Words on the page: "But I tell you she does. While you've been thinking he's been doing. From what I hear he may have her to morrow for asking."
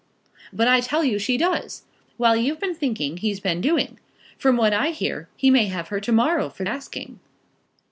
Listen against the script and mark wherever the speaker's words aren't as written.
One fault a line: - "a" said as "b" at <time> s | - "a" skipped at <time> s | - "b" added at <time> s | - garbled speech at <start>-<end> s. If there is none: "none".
none